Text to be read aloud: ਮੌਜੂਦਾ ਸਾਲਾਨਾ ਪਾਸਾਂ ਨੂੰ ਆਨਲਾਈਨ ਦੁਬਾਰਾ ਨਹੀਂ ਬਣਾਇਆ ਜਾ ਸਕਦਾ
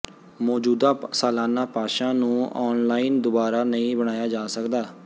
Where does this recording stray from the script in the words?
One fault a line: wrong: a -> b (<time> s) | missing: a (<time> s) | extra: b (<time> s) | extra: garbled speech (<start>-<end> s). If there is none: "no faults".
no faults